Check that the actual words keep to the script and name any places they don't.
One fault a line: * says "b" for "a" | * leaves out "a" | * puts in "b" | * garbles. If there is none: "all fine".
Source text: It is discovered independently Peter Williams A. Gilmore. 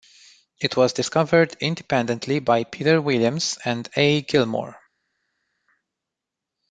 * says "was" for "is"
* puts in "by"
* puts in "and"